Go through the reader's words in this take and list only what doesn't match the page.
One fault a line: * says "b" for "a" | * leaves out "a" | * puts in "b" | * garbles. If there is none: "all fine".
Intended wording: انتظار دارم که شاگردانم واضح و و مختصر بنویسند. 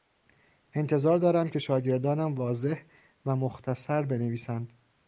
* leaves out "و"